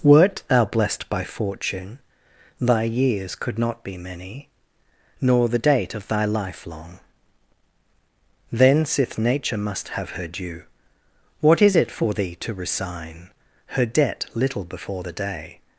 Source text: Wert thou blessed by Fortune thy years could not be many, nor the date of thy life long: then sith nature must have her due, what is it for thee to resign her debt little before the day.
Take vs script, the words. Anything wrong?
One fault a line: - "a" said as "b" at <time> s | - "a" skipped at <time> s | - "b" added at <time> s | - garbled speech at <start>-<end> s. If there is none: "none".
none